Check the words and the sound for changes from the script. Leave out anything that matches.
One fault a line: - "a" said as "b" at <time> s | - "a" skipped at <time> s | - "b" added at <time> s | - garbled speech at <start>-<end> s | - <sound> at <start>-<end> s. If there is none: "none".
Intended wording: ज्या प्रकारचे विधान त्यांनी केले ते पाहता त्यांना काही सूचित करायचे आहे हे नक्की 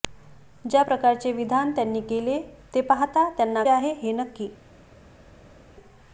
- "काही सूचित करायचे" skipped at 3.6 s